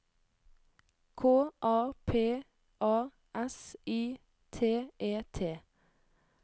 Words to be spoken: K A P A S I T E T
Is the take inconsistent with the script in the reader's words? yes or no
no